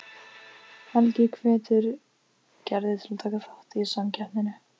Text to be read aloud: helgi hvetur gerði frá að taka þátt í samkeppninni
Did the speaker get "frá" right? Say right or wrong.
wrong